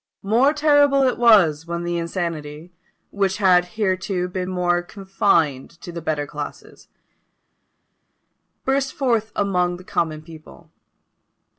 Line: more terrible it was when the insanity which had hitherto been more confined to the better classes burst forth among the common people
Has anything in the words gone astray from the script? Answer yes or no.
no